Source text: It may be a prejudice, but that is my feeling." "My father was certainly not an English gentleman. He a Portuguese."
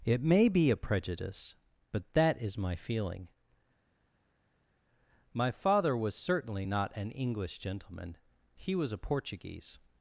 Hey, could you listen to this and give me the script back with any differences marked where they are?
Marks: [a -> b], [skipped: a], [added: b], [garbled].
It may be a prejudice, but that is my feeling." "My father was certainly not an English gentleman. He [added: was] a Portuguese."